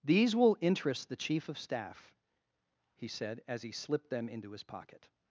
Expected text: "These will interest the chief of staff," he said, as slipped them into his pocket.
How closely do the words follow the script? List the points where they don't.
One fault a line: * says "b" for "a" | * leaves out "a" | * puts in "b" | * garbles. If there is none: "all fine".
* puts in "he"